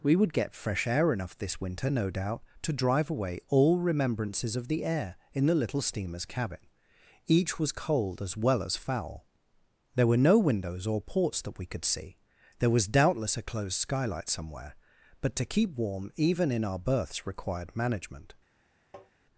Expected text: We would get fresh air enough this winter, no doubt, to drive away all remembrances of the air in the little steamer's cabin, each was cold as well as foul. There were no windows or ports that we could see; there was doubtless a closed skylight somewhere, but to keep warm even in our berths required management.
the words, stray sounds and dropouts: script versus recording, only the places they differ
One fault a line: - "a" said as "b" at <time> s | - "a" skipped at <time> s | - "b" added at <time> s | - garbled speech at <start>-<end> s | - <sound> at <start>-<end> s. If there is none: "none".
- tap at 18.9-19.1 s